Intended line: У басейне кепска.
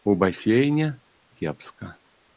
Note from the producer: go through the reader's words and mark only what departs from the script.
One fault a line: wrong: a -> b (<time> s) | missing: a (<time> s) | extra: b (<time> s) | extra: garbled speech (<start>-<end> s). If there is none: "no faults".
no faults